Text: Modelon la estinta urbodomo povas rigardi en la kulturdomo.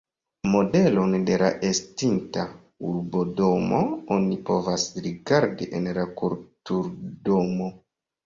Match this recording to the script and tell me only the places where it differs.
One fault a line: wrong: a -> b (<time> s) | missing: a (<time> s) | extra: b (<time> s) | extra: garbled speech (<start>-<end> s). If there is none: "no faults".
extra: de (1.2 s)
extra: oni (4.2 s)